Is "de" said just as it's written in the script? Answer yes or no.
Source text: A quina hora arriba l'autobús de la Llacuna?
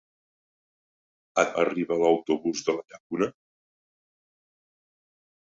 yes